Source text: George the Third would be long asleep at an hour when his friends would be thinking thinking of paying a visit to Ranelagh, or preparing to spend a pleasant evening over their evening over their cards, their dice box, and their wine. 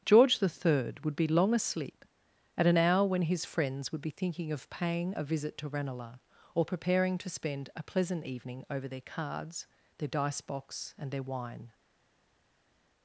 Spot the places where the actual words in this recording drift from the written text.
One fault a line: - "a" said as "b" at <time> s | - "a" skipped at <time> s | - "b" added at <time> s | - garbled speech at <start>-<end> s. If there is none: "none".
- "thinking" skipped at 4.5 s
- "evening over their" skipped at 9.0 s